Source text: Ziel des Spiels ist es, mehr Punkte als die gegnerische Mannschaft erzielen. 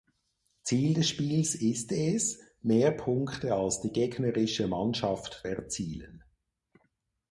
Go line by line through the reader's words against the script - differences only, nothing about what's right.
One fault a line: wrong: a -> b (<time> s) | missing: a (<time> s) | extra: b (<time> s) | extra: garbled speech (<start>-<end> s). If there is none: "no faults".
no faults